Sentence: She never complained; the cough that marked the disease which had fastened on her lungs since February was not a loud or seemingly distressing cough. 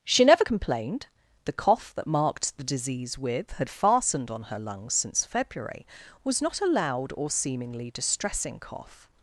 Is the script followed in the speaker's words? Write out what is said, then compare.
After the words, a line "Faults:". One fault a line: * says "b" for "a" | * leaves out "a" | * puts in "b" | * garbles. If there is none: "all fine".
She never complained; the cough that marked the disease with had fastened on her lungs since February was not a loud or seemingly distressing cough.
Faults:
* says "with" for "which"